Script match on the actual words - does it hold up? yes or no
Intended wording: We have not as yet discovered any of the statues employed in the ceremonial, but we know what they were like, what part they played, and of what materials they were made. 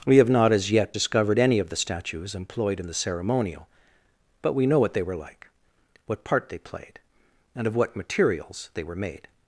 yes